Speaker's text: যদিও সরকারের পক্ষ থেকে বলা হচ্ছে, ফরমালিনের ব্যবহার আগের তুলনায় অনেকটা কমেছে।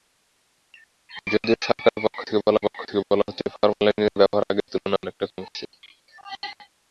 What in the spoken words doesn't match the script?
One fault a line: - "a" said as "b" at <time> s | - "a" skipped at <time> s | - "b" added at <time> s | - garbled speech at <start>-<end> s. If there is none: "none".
- "পক্ষ থেকে বলা" added at 2.7 s